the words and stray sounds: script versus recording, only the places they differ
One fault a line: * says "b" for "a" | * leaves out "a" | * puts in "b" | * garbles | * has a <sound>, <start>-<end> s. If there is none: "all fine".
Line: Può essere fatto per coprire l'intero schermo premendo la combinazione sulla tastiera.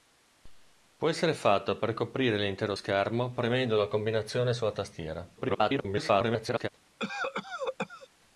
* garbles
* has a cough, 7.0-8.1 s